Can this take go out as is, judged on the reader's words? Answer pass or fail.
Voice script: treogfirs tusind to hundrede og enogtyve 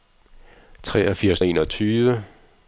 fail